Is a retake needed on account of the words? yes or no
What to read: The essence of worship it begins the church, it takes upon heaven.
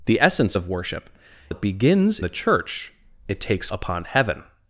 no